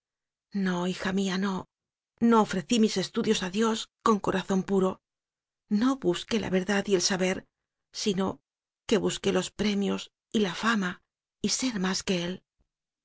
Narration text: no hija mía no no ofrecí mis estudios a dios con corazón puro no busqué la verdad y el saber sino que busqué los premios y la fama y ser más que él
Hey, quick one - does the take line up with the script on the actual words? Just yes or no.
yes